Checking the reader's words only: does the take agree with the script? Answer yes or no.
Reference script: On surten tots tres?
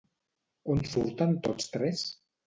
yes